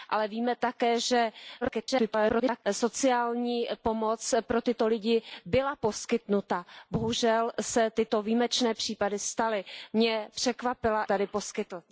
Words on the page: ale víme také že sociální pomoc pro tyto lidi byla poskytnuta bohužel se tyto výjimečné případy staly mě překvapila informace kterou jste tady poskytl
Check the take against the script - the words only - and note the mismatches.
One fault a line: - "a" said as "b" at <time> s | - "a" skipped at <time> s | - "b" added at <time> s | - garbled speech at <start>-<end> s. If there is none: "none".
- garbled speech at 1.6-2.6 s
- "informace kterou jste" skipped at 11.0 s